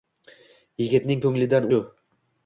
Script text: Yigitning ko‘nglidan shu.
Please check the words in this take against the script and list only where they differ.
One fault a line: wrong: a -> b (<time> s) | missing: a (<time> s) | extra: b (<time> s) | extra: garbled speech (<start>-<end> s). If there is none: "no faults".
no faults